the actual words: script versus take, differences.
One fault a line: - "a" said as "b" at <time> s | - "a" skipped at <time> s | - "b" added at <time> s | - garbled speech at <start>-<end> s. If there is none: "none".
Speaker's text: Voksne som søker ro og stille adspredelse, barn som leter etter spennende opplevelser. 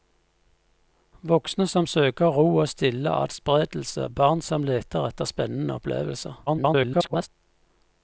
- garbled speech at 6.5-7.3 s